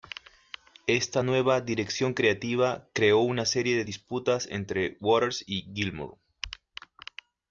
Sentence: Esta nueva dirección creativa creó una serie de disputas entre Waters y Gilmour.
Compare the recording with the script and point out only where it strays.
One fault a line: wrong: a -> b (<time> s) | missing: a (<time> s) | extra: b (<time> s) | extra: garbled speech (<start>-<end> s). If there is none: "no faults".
no faults